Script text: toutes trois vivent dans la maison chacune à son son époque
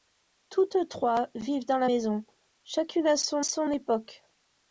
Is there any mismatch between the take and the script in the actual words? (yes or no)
no